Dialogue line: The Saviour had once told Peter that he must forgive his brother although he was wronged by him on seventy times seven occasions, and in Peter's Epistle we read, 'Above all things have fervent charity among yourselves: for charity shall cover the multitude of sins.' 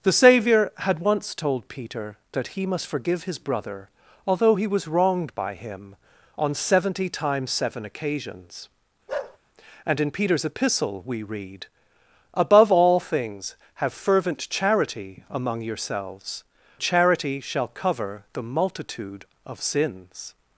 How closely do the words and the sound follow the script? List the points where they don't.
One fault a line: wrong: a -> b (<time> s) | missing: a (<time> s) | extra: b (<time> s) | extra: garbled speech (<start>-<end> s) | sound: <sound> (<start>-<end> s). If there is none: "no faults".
sound: bark (9.1-9.4 s)
missing: for (16.4 s)